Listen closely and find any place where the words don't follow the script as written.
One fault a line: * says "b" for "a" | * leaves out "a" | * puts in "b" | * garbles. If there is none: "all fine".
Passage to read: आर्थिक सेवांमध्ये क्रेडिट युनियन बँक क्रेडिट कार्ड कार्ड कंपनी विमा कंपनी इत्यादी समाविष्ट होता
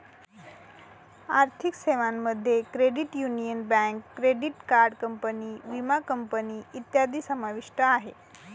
* leaves out "कार्ड"
* says "आहे" for "होता"